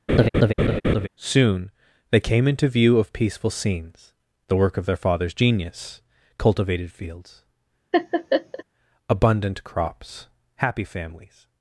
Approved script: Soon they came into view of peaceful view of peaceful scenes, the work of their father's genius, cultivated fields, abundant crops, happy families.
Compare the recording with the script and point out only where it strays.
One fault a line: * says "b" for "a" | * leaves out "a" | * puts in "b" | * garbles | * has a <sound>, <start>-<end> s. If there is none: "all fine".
* has a laugh, 0.1-1.1 s
* leaves out "view of peaceful"
* has a laugh, 7.9-8.6 s